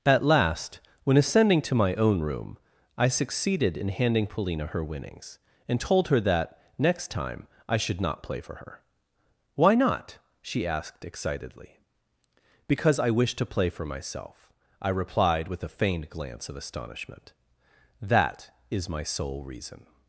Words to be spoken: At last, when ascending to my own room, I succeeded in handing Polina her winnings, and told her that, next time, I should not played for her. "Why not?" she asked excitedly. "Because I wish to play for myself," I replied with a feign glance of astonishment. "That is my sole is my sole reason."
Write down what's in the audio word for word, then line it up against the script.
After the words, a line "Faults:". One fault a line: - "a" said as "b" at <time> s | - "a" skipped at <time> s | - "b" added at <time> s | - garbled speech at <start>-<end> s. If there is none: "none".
At last, when ascending to my own room, I succeeded in handing Polina her winnings, and told her that, next time, I should not play for her. "Why not?" she asked excitedly. "Because I wish to play for myself," I replied with a feigned glance of astonishment. "That is my sole reason."
Faults:
- "played" said as "play" at 8.2 s
- "feign" said as "feigned" at 15.7 s
- "is my sole" skipped at 19.4 s